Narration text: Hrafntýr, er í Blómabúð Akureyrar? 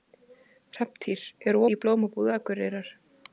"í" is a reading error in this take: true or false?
false